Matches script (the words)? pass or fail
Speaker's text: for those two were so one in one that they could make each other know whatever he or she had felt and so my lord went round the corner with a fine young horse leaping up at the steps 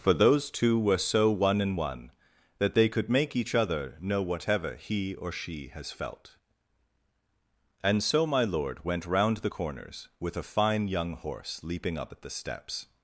fail